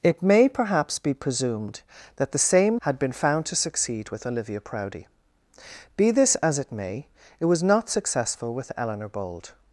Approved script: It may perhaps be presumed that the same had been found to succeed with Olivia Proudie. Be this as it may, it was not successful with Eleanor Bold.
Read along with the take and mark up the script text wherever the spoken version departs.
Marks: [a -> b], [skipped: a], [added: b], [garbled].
It may perhaps be presumed that the same had been found to succeed with Olivia Proudie. Be this as it may, it was not successful with Eleanor Bold.